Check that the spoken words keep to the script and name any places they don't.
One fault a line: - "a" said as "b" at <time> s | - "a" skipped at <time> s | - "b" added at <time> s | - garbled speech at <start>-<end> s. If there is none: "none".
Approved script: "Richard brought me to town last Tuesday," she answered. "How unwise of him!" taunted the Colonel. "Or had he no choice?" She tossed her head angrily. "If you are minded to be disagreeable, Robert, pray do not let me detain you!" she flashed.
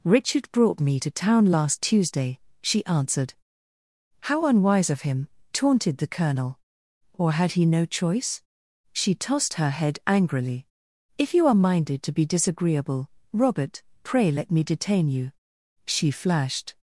- "do not" skipped at 14.3 s